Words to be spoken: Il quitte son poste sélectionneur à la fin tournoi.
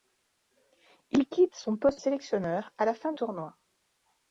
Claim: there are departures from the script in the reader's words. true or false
false